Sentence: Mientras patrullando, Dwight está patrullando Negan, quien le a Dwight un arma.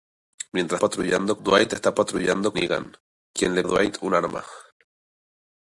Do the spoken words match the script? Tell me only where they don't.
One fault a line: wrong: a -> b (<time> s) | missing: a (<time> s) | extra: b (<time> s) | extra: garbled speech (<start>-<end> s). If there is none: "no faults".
no faults